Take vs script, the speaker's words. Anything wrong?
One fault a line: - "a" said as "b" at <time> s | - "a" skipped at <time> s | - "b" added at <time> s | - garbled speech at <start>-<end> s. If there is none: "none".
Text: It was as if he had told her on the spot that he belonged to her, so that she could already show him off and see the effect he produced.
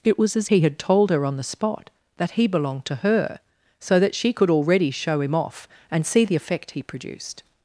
- "if" skipped at 0.5 s